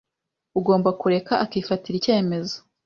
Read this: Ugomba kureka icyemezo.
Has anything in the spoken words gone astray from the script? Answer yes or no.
yes